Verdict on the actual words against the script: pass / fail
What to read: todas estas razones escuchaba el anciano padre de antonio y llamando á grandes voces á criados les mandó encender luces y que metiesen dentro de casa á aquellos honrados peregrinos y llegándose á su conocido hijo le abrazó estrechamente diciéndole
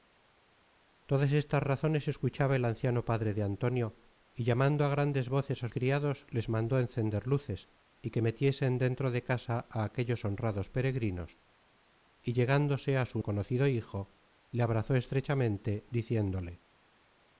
pass